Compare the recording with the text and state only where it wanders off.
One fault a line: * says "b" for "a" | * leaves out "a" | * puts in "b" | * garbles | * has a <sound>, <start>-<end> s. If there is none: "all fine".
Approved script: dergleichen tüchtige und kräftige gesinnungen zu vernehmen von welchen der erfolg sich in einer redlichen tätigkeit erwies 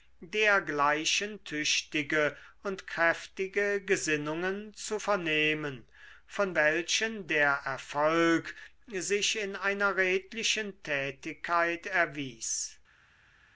all fine